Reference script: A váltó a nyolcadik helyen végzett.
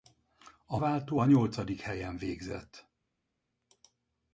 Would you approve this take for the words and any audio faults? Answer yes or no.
yes